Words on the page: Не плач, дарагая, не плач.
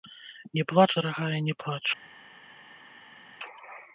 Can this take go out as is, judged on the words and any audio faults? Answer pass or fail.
pass